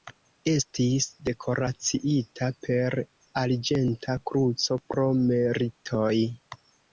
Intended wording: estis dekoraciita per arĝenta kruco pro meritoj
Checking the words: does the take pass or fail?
pass